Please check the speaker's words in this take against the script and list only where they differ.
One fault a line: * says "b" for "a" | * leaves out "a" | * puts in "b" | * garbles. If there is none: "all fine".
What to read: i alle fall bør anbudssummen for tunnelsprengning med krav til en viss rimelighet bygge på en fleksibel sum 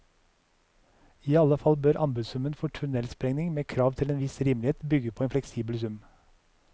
all fine